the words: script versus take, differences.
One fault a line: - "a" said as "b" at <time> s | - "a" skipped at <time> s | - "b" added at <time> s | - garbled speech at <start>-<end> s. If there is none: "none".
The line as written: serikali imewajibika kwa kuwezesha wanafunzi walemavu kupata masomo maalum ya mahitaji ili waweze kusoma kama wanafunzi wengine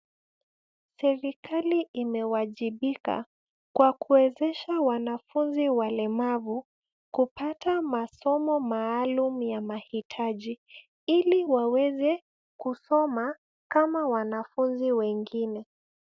none